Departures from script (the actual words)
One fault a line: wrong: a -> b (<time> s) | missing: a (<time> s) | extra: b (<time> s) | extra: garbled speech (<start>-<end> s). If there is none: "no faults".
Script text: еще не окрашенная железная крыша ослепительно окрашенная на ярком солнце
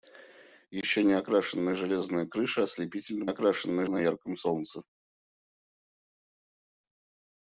no faults